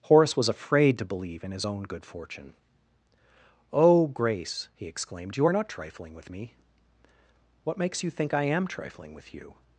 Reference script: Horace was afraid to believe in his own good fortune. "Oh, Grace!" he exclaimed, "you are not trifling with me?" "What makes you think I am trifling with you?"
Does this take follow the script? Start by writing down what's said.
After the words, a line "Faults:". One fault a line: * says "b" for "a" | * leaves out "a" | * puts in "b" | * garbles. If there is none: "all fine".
Horace was afraid to believe in his own good fortune. "Oh, Grace!" he exclaimed, "you are not trifling with me?" "What makes you think I am trifling with you?"
Faults:
all fine